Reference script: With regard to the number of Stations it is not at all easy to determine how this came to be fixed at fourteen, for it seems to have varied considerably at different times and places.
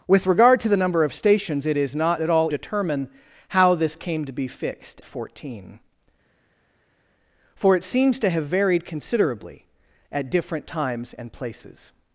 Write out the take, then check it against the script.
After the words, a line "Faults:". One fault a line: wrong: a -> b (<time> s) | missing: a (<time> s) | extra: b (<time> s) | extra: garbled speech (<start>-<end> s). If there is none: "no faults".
With regard to the number of Stations it is not at all determine how this came to be fixed fourteen, for it seems to have varied considerably at different times and places.
Faults:
missing: easy to (2.5 s)
missing: at (5.0 s)